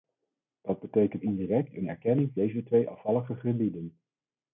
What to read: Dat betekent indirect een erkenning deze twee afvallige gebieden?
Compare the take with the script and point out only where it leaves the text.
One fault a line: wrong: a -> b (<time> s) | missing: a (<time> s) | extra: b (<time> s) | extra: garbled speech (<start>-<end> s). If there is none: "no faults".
no faults